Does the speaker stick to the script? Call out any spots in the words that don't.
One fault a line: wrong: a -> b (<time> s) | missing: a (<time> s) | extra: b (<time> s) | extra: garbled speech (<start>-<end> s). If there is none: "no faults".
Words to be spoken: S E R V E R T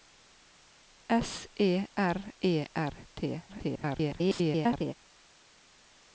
missing: V (2.3 s)
extra: garbled speech (3.5-4.9 s)